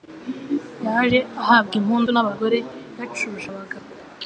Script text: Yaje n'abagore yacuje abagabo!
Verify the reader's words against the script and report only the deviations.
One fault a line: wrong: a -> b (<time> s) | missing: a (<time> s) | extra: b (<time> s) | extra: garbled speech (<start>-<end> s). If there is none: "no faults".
extra: ahabwa impundu (1.4 s)